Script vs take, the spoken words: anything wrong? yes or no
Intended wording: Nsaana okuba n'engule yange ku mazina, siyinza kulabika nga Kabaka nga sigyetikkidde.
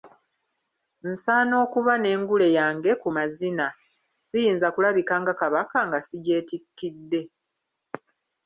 no